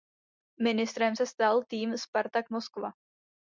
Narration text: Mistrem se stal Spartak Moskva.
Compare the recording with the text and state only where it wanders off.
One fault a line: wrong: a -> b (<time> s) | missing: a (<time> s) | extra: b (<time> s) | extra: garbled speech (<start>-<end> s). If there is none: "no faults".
extra: tým (1.7 s)